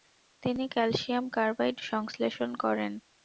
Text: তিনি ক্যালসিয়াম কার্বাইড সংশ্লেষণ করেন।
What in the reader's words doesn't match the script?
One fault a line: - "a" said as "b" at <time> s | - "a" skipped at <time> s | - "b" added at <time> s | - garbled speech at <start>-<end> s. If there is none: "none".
none